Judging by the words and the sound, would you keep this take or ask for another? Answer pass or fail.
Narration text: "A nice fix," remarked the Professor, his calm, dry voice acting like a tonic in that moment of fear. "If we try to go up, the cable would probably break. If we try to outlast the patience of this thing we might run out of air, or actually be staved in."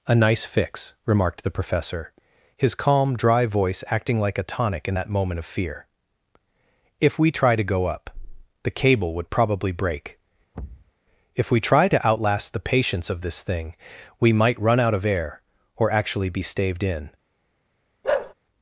fail